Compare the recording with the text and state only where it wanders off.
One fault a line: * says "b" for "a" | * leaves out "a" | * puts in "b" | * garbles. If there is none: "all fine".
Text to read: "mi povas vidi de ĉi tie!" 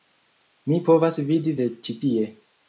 all fine